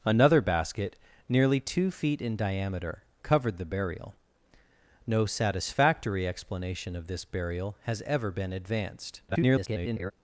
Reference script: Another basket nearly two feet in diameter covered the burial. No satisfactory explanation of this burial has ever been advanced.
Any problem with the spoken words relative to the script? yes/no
yes